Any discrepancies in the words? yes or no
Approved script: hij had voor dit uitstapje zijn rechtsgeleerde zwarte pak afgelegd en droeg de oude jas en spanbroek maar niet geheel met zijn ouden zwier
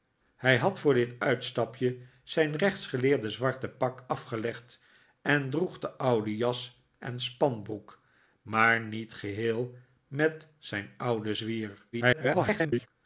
yes